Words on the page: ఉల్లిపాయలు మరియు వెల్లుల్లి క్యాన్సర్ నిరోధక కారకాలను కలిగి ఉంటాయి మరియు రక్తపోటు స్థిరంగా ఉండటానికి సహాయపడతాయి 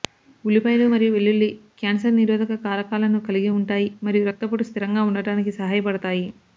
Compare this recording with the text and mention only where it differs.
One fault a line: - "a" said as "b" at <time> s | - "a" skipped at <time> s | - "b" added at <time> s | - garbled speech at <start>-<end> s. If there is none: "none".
none